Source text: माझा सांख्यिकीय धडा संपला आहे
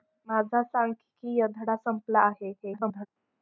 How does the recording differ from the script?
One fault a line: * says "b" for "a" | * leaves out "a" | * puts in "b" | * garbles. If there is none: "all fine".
* garbles